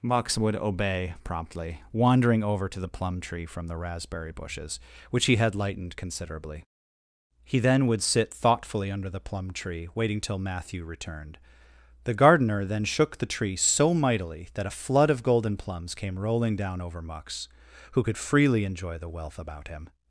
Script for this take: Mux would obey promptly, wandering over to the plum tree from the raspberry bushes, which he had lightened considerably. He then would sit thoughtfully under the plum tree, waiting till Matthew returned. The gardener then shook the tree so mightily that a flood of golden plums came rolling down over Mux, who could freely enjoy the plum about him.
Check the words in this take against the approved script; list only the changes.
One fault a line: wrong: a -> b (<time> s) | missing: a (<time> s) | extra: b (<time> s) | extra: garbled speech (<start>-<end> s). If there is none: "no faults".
wrong: plum -> wealth (19.1 s)